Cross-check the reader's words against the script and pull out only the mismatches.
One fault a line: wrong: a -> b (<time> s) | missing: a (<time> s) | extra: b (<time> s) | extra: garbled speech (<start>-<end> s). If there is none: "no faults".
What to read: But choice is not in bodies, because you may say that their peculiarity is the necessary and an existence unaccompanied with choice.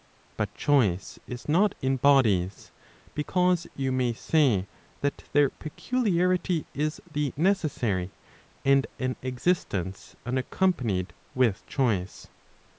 no faults